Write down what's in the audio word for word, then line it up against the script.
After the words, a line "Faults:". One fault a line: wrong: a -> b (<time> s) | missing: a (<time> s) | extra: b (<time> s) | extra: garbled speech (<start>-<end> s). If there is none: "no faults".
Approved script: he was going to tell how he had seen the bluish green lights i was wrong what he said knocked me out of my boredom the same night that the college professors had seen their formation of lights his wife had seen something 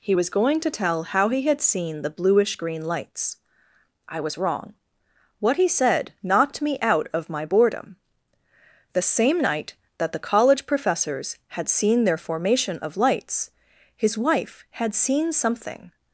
he was going to tell how he had seen the bluish green lights i was wrong what he said knocked me out of my boredom the same night that the college professors had seen their formation of lights his wife had seen something
Faults:
no faults